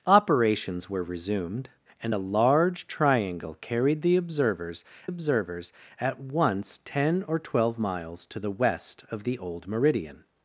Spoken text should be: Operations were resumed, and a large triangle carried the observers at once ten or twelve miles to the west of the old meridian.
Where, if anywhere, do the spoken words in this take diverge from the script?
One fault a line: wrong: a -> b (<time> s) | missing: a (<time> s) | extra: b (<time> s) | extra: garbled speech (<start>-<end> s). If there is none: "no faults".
extra: observers (5.0 s)